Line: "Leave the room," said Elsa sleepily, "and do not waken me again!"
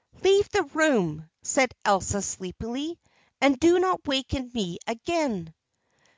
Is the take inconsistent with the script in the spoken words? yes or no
no